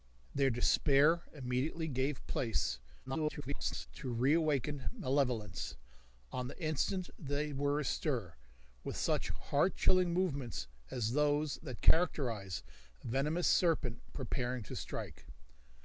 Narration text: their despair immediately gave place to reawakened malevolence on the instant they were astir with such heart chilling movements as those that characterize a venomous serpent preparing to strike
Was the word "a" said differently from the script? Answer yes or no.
no